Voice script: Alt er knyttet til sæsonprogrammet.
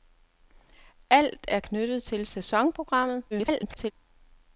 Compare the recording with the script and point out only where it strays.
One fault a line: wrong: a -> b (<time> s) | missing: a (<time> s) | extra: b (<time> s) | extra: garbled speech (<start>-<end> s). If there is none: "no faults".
extra: garbled speech (3.3-3.9 s)